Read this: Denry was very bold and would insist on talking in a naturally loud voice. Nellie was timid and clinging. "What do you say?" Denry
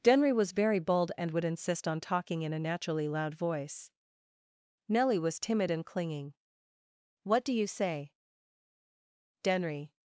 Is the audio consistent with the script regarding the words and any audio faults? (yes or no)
yes